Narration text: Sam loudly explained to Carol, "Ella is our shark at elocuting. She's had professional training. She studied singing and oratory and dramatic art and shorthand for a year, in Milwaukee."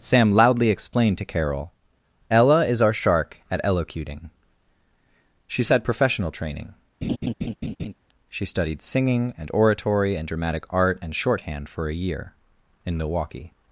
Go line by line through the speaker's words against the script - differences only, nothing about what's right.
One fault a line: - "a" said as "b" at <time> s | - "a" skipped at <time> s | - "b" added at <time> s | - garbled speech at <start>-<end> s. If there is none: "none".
none